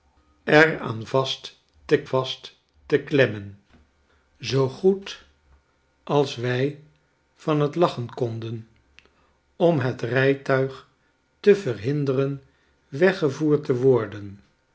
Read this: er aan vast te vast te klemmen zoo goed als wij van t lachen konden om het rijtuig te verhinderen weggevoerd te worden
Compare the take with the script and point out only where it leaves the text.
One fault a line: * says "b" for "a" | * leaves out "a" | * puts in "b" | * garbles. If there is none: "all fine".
all fine